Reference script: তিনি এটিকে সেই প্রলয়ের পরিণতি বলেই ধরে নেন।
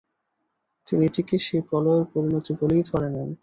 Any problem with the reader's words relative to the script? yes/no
no